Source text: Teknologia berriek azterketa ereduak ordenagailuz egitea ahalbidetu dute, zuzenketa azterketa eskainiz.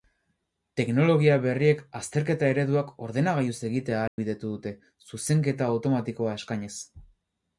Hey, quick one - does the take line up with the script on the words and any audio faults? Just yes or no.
no